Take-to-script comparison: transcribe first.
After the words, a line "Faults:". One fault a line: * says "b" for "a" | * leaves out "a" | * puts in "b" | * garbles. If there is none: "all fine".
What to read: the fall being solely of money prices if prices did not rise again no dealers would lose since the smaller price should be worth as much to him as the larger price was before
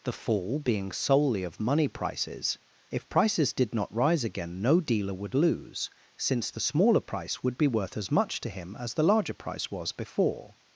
the fall being solely of money prices if prices did not rise again no dealer would lose since the smaller price would be worth as much to him as the larger price was before
Faults:
* says "dealer" for "dealers"
* says "would" for "should"